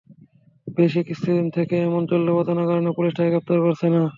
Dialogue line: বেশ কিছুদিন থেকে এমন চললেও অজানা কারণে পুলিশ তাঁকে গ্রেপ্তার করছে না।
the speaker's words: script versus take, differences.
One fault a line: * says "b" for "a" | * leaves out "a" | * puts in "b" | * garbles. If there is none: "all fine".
all fine